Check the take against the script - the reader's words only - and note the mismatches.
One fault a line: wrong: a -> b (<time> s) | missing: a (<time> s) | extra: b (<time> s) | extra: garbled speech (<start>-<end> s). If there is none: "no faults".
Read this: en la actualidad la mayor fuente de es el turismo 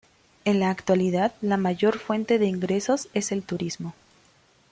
extra: ingresos (2.4 s)